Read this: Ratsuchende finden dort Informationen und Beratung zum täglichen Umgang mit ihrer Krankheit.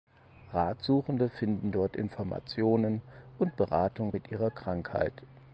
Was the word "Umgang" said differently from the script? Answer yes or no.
yes